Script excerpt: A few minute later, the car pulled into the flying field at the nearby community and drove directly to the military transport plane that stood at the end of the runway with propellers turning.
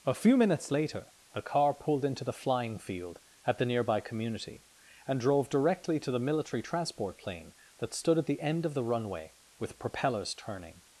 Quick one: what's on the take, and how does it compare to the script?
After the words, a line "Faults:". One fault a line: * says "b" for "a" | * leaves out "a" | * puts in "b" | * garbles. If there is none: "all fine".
A few minutes later, the car pulled into the flying field at the nearby community and drove directly to the military transport plane that stood at the end of the runway with propellers turning.
Faults:
* says "minutes" for "minute"